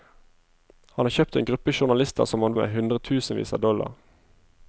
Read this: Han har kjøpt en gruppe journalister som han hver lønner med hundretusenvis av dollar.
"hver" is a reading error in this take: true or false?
true